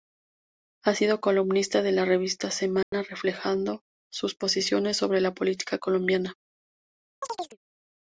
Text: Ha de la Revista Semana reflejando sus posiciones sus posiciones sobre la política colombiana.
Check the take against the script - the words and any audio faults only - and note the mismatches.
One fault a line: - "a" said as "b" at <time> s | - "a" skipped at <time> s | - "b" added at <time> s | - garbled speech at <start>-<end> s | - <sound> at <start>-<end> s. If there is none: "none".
- "sido columnista" added at 0.9 s
- dropout at 2.8-2.9 s
- "sus posiciones" skipped at 5.0 s
- chirp at 7.2-7.6 s